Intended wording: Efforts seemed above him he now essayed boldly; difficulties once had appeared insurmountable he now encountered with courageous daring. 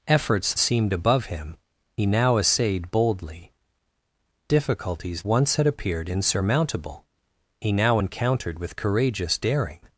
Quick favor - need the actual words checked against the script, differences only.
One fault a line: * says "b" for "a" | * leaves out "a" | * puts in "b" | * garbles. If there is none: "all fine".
all fine